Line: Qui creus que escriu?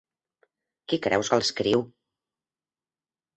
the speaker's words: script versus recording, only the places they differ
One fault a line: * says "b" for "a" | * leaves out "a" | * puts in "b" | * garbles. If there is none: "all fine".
all fine